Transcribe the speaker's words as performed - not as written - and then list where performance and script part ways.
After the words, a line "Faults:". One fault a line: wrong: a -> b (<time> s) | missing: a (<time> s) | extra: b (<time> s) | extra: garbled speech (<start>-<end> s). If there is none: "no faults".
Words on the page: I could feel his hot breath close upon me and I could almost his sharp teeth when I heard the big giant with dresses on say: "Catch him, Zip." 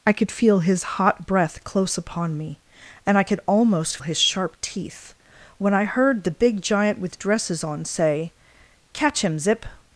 I could feel his hot breath close upon me and I could almost his sharp teeth when I heard the big giant with dresses on say: "Catch him, Zip."
Faults:
no faults